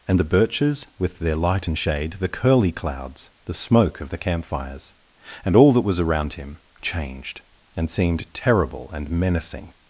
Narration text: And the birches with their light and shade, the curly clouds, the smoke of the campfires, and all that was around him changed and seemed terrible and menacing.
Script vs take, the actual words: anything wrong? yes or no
no